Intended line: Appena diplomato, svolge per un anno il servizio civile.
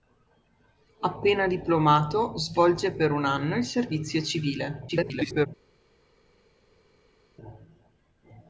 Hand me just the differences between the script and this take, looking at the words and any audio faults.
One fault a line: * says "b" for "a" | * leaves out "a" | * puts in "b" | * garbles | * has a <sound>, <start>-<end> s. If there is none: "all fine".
* garbles